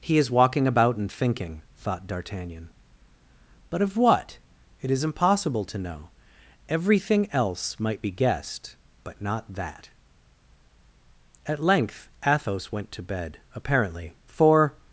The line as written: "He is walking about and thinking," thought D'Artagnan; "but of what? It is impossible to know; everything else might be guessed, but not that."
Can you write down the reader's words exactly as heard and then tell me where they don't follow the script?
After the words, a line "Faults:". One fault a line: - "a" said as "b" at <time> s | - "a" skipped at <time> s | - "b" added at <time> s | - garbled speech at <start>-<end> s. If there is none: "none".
"He is walking about and thinking," thought D'Artagnan; "but of what? It is impossible to know; everything else might be guessed, but not that." At length Athos went to bed, apparently, for
Faults:
- "At length Athos went to bed apparently for" added at 11.4 s